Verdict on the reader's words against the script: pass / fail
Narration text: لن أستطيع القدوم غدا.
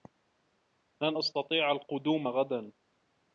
pass